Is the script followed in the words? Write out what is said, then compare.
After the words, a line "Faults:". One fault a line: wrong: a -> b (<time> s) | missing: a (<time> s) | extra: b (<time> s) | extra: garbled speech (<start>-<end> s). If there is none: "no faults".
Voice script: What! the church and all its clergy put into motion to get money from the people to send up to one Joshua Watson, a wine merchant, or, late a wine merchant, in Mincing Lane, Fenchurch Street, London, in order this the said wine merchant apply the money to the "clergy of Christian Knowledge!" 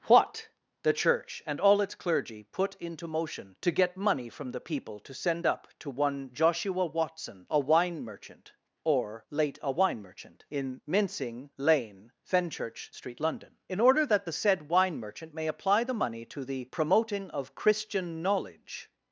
What! the church and all its clergy put into motion to get money from the people to send up to one Joshua Watson, a wine merchant, or, late a wine merchant, in Mincing Lane, Fenchurch Street, London, in order that the said wine merchant may apply the money to the "promoting of Christian Knowledge!"
Faults:
wrong: this -> that (14.1 s)
extra: may (15.3 s)
wrong: clergy -> promoting (16.7 s)